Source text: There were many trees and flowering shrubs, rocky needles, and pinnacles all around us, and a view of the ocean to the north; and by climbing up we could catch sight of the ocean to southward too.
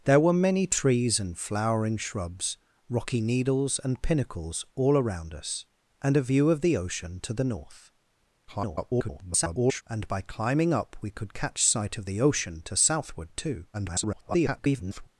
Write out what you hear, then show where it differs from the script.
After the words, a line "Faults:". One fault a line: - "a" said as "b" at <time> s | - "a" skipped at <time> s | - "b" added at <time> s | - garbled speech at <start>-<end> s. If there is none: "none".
There were many trees and flowering shrubs, rocky needles, and pinnacles all around us, and a view of the ocean to the north; [garbled] and by climbing up we could catch sight of the ocean to southward too. [garbled]
Faults:
- garbled speech at 8.5-9.8 s
- garbled speech at 13.7-15.1 s